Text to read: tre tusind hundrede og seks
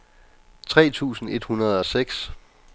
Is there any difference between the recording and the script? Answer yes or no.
yes